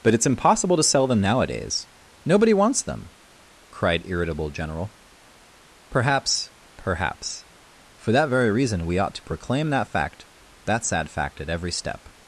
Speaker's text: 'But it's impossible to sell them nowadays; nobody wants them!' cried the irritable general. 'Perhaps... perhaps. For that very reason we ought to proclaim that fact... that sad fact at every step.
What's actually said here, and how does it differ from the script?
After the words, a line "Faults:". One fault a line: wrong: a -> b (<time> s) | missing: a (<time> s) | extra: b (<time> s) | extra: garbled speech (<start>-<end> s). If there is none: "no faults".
'But it's impossible to sell them nowadays; nobody wants them!' cried irritable general. 'Perhaps... perhaps. For that very reason we ought to proclaim that fact... that sad fact at every step.
Faults:
missing: the (4.0 s)